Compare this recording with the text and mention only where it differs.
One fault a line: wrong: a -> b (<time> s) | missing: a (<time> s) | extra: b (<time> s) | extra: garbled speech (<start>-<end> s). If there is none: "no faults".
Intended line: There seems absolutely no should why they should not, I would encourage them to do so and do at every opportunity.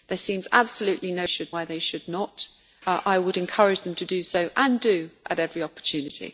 no faults